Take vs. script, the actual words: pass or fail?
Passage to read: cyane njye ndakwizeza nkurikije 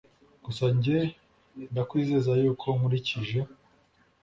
fail